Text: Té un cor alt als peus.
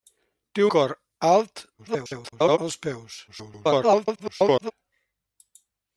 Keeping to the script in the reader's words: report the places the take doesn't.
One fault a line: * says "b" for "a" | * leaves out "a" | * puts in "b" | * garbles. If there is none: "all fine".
* leaves out "un"
* garbles
* garbles